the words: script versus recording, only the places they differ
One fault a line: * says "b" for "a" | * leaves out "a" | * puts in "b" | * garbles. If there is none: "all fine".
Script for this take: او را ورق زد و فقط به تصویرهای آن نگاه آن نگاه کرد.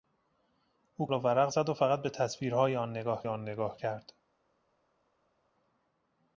all fine